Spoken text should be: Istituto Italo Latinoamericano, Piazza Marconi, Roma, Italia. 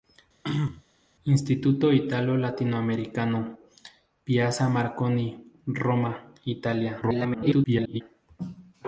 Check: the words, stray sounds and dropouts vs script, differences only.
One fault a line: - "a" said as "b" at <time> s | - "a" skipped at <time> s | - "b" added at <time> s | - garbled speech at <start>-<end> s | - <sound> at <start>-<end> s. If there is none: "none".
- throat clearing at 0.4-0.8 s
- garbled speech at 7.0-8.0 s